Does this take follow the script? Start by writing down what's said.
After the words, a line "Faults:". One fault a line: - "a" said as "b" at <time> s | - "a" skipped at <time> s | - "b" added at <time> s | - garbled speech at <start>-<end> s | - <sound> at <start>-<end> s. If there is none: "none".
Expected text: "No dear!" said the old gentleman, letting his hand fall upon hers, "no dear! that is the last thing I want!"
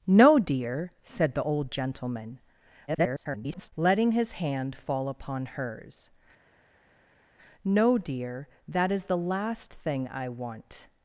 "No dear!" said the old gentleman, [garbled] letting his hand fall upon hers, "no dear! that is the last thing I want!"
Faults:
- garbled speech at 2.9-3.7 s